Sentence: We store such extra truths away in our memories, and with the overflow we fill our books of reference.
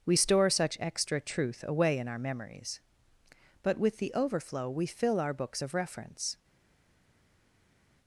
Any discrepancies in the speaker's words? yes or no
yes